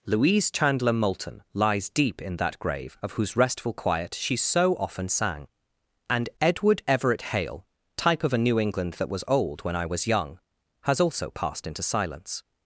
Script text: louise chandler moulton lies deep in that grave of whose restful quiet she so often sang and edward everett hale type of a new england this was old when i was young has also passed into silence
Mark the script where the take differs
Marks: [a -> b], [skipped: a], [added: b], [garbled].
louise chandler moulton lies deep in that grave of whose restful quiet she so often sang and edward everett hale type of a new england [this -> that] was old when i was young has also passed into silence